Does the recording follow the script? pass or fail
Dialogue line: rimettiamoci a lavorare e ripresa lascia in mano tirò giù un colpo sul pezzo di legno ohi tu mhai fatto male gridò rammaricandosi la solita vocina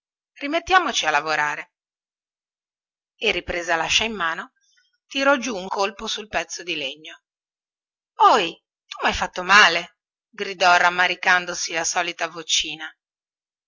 pass